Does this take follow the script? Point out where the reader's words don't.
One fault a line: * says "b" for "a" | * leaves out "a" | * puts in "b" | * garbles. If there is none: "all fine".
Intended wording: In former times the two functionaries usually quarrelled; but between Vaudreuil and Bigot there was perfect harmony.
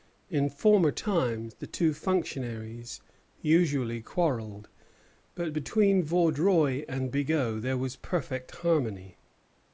all fine